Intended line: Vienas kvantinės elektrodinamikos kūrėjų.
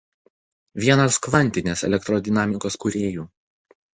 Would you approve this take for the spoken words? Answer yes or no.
yes